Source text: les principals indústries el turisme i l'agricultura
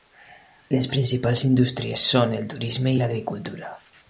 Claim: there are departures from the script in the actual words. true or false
true